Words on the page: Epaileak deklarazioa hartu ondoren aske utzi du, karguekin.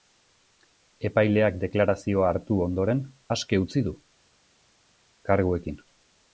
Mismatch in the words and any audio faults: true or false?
false